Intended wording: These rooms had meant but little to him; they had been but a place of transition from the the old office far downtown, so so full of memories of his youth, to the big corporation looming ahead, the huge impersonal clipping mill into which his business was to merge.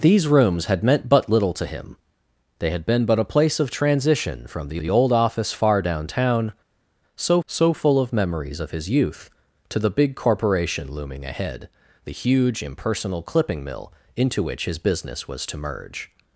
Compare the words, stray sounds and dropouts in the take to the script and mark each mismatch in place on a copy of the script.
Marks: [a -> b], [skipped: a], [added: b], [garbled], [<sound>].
These rooms had meant but little to him; they had been but a place of transition from the the old office far downtown, so so full of memories of his youth, to the big corporation looming ahead, the huge impersonal clipping mill into which his business was to merge.